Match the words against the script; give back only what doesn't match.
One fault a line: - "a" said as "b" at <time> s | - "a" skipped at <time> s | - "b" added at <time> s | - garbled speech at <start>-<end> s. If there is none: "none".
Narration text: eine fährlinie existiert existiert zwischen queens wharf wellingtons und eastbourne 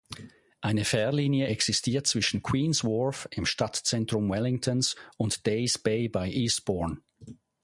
- "existiert" skipped at 2.1 s
- "im stadtzentrum" added at 3.3 s
- "days bay bei" added at 5.4 s